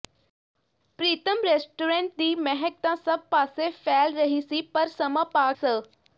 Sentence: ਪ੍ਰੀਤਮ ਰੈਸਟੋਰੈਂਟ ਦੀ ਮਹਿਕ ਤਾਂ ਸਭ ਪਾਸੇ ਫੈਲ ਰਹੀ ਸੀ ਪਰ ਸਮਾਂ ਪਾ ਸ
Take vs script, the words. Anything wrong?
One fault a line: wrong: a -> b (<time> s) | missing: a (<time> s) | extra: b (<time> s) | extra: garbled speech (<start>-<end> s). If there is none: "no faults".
no faults